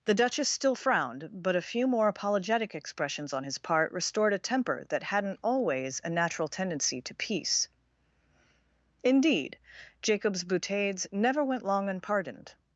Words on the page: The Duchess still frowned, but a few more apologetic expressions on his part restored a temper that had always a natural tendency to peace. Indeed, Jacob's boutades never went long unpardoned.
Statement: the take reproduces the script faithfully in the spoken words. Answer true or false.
false